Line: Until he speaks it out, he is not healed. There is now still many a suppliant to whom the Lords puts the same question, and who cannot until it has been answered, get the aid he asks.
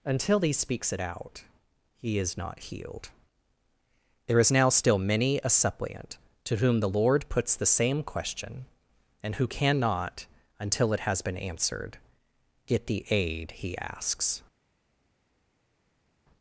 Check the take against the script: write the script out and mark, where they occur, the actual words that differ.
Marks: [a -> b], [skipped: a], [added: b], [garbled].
Until he speaks it out, he is not healed. There is now still many a suppliant to whom the [Lords -> Lord] puts the same question, and who cannot until it has been answered, get the aid he asks.